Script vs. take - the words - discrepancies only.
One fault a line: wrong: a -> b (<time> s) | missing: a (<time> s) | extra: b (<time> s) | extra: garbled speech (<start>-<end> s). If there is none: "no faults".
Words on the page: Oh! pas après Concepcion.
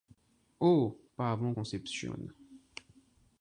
wrong: après -> avant (1.3 s)